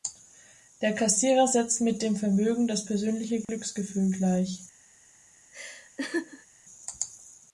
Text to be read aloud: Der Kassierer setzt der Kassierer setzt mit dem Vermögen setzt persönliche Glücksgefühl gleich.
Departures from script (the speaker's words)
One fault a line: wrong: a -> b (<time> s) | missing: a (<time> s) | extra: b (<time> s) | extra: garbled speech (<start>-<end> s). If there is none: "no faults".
missing: der Kassierer setzt (1.8 s)
wrong: setzt -> das (2.7 s)